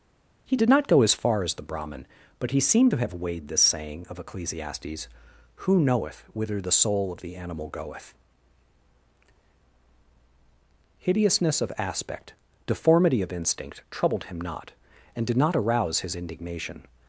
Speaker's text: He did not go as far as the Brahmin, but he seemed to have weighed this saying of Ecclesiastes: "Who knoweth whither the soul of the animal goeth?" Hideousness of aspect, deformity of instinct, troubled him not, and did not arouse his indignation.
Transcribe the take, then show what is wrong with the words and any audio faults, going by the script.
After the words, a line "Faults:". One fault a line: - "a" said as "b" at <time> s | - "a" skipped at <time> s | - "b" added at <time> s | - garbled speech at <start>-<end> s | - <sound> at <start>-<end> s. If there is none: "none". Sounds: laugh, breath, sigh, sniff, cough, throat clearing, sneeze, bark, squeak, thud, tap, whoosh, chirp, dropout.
He did not go as far as the Brahmin, but he seemed to have weighed this saying of Ecclesiastes: "Who knoweth whither the soul of the animal goeth?" Hideousness of aspect, deformity of instinct, troubled him not, and did not arouse his indignation.
Faults:
none